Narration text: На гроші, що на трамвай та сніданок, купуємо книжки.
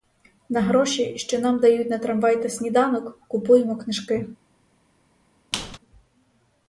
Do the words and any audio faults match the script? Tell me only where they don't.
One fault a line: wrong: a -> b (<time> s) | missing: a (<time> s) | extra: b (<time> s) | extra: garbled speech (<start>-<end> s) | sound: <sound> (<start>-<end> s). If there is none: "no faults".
extra: нам дають (1.4 s)
sound: squeak (5.5-5.8 s)